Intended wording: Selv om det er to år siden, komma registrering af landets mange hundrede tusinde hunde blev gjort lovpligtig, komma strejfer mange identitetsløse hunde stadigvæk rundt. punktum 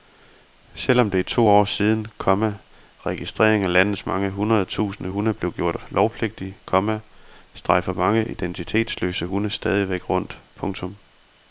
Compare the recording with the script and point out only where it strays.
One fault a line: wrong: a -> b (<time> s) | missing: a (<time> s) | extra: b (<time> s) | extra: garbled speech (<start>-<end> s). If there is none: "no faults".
no faults